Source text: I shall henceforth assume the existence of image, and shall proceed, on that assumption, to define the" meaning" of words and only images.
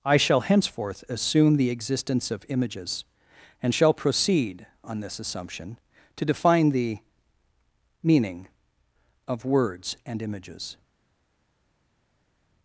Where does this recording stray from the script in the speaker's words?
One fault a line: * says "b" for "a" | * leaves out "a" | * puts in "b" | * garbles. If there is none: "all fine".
* says "images" for "image"
* says "this" for "that"
* leaves out "only"